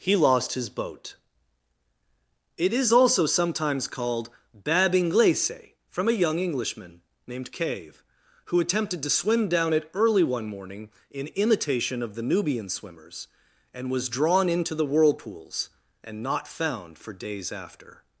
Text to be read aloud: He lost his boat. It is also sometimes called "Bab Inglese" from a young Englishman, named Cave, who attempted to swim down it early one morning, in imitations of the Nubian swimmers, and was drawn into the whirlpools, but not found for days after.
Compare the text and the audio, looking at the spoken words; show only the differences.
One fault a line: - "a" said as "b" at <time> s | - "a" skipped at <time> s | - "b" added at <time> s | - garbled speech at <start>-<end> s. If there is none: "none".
- "imitations" said as "imitation" at 11.3 s
- "but" said as "and" at 16.0 s